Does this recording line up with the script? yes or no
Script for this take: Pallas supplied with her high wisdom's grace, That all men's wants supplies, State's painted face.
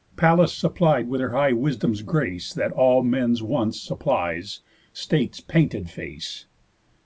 yes